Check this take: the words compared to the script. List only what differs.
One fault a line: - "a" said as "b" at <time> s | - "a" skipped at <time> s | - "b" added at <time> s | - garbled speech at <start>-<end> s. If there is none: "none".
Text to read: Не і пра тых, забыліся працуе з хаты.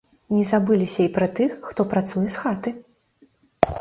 - "забыліся" added at 0.5 s
- "забыліся" said as "хто" at 1.7 s